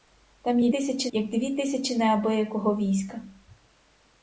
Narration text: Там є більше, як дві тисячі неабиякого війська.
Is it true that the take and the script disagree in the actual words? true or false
true